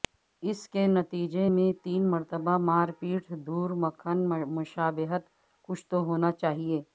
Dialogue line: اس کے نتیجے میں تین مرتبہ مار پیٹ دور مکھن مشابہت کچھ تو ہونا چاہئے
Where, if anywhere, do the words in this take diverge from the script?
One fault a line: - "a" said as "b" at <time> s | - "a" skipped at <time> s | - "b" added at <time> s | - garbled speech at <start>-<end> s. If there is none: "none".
none